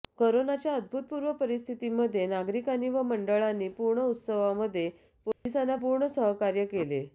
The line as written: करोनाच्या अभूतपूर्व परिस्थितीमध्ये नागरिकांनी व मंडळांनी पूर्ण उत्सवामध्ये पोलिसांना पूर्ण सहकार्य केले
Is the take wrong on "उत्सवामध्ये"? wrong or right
right